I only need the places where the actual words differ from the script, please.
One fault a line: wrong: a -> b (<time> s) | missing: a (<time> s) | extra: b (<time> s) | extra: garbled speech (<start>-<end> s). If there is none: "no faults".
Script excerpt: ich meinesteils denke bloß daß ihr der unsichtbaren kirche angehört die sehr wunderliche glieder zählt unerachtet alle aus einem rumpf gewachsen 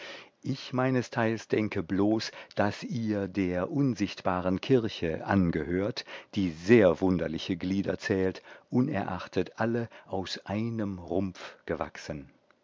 no faults